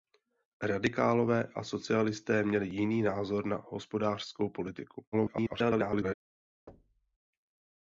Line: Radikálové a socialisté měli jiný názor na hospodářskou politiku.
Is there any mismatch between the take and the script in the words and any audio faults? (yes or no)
yes